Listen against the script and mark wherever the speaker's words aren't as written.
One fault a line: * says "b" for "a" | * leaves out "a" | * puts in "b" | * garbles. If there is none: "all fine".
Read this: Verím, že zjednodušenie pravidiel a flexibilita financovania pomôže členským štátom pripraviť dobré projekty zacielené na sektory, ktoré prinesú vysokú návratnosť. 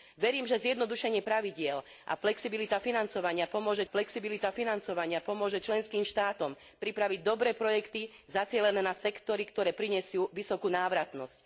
* puts in "flexibilita financovania pomôže"